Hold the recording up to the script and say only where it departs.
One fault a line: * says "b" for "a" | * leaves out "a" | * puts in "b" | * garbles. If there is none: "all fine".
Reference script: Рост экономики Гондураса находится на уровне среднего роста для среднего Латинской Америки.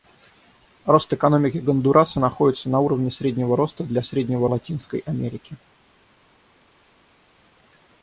all fine